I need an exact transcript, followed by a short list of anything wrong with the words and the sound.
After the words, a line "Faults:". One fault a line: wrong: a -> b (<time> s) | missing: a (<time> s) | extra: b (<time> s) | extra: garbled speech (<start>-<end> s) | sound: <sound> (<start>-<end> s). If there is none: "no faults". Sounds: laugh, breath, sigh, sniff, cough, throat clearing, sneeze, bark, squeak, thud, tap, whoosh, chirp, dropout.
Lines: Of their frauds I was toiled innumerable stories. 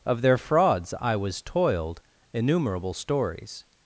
Of their frauds I was toiled innumerable stories.
Faults:
no faults